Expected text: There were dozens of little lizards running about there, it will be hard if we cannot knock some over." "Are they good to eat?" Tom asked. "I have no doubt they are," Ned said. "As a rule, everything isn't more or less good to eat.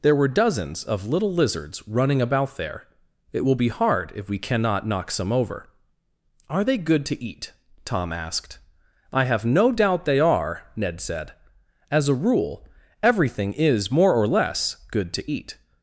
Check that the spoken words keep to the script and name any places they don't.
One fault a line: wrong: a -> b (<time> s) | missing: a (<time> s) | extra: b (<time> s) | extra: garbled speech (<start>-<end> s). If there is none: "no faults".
wrong: isn't -> is (13.5 s)